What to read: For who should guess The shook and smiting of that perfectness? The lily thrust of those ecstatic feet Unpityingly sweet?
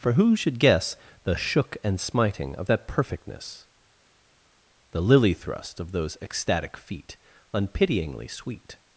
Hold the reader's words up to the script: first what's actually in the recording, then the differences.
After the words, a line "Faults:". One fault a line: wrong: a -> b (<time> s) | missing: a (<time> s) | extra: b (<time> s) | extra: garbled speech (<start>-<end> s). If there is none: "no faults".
For who should guess The shook and smiting of that perfectness? The lily thrust of those ecstatic feet Unpityingly sweet?
Faults:
no faults